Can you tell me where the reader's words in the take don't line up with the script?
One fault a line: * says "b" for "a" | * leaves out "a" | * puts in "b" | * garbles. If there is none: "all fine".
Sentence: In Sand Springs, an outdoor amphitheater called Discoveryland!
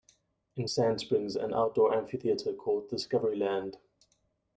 all fine